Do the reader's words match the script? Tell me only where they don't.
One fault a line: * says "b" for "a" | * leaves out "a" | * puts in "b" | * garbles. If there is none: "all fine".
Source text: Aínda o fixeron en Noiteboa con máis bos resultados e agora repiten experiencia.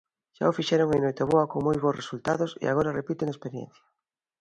* says "Xa" for "Aínda"
* says "moi" for "máis"